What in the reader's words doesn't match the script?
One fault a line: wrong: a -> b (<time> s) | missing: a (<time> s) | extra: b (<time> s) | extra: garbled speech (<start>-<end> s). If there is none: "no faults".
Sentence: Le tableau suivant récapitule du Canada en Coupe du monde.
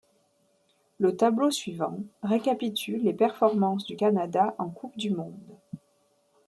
extra: les performances (3.0 s)